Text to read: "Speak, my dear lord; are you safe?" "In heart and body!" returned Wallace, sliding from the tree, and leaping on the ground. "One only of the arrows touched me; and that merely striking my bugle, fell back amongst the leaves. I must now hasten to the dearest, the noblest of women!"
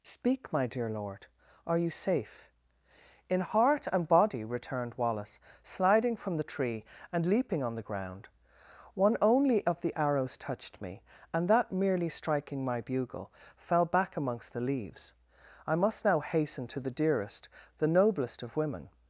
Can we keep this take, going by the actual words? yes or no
yes